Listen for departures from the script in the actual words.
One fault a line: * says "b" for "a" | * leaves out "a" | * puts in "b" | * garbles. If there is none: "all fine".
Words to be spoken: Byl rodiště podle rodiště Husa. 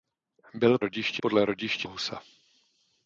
all fine